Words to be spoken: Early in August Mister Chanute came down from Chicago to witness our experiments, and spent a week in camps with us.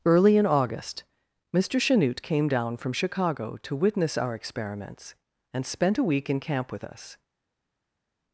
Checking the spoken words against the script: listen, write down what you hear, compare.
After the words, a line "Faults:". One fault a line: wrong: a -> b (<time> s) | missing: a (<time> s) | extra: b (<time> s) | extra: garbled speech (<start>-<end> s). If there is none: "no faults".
Early in August Mister Chanute came down from Chicago to witness our experiments, and spent a week in camp with us.
Faults:
wrong: camps -> camp (6.4 s)